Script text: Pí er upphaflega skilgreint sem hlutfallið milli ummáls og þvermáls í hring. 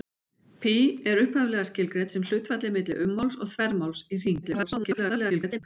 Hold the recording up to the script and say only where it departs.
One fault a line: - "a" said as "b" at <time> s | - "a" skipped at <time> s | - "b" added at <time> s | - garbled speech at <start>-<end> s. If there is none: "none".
- garbled speech at 4.4-5.6 s